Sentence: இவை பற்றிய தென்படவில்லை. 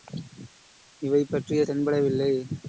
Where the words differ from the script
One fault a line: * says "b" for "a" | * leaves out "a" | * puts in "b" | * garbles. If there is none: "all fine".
all fine